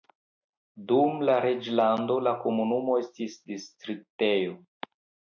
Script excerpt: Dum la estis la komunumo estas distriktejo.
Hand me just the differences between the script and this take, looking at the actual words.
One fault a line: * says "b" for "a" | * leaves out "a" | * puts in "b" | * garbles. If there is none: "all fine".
* says "reĝlando" for "estis"
* says "estis" for "estas"